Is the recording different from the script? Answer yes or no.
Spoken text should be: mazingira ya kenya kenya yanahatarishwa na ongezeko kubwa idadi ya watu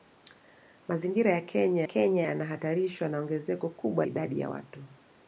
no